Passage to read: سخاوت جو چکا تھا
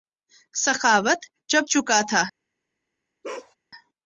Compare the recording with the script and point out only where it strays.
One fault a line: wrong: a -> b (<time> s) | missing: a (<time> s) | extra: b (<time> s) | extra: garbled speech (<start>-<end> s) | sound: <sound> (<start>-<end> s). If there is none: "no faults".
sound: bark (3.2-3.6 s)